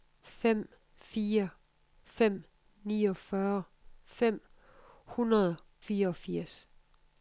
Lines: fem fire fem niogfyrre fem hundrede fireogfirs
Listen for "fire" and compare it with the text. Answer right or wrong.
right